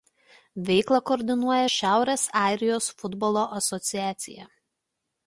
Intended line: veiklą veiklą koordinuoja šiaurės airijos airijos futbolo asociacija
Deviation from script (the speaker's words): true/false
true